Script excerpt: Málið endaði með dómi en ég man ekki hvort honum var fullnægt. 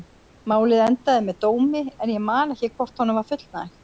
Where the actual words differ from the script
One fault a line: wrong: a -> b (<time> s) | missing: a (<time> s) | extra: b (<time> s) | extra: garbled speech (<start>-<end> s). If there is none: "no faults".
no faults